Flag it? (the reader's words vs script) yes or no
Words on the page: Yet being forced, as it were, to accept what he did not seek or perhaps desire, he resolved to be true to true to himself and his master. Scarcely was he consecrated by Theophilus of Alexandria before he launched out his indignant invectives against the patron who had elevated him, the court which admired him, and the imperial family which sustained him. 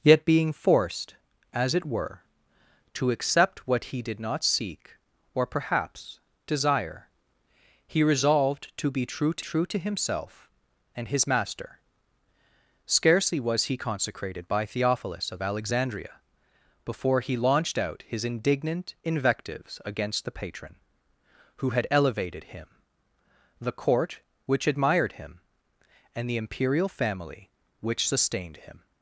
no